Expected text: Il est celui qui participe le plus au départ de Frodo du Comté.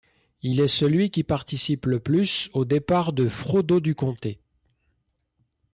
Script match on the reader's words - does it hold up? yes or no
yes